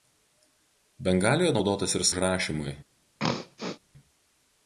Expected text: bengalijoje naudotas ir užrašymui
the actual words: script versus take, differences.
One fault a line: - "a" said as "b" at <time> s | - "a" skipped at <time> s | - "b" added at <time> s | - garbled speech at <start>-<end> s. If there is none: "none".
none